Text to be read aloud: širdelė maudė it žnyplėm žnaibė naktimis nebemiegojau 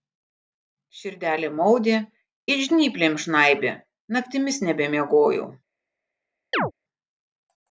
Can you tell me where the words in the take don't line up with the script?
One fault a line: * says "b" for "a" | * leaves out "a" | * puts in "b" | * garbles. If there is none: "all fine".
all fine